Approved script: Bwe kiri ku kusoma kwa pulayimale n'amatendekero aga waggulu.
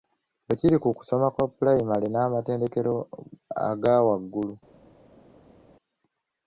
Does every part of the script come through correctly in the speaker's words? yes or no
yes